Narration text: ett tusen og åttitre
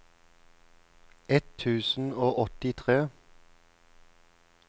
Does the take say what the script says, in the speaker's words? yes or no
yes